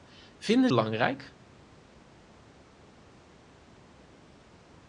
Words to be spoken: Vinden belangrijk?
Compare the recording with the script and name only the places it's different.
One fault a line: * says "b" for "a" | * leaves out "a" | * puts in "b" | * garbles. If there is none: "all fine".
all fine